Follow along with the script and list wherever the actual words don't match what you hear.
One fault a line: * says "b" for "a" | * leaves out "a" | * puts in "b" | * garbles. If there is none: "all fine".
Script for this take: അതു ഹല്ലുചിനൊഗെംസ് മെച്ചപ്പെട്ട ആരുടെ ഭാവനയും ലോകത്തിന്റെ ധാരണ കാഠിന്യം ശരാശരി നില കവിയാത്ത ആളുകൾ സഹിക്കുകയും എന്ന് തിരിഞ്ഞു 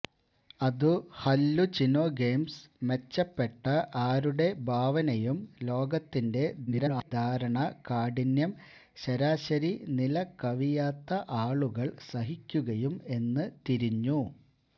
* garbles